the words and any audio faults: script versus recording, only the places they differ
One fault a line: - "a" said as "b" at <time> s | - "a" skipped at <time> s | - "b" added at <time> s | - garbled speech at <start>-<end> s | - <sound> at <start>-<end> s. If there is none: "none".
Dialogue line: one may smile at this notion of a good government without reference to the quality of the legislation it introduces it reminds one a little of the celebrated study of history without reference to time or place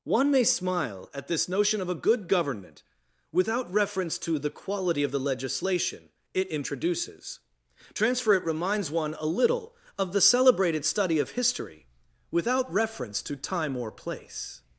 - "transfer" added at 7.9 s